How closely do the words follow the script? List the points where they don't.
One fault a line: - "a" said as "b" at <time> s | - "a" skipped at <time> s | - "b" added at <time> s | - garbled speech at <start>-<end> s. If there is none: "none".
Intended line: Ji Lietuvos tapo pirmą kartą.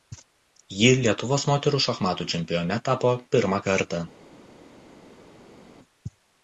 - "moterų šachmatų čempione" added at 1.5 s